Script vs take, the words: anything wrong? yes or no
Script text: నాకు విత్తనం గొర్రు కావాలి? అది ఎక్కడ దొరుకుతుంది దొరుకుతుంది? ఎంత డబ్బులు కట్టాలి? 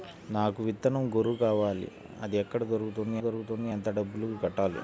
no